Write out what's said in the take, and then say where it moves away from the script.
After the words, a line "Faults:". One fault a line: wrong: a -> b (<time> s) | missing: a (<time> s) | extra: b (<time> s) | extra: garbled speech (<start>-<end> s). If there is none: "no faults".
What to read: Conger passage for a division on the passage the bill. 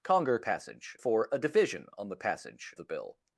Conger passage for a division on the passage the bill.
Faults:
no faults